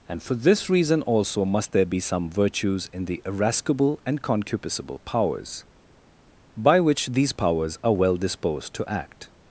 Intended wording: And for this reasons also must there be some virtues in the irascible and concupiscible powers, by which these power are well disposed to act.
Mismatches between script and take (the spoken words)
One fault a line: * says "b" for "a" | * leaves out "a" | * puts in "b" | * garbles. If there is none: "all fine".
* says "reason" for "reasons"
* says "powers" for "power"